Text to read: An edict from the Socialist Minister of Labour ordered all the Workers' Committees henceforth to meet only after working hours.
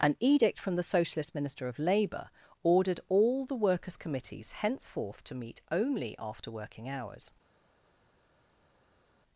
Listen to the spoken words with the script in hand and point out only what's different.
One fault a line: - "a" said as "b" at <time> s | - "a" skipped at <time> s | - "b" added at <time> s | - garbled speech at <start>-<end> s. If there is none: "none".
none